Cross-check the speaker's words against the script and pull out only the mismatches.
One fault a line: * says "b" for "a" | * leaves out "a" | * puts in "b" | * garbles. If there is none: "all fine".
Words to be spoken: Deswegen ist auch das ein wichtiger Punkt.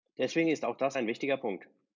all fine